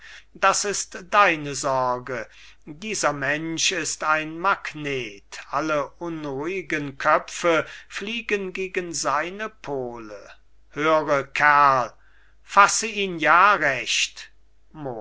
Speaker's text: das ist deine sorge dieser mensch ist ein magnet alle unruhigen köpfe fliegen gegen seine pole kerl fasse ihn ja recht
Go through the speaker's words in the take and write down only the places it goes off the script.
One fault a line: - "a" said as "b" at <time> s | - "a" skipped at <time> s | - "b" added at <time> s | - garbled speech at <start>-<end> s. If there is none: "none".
- "höre" added at 10.7 s